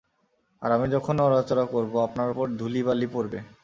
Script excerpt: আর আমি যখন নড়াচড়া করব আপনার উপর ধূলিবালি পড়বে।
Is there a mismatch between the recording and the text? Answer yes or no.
no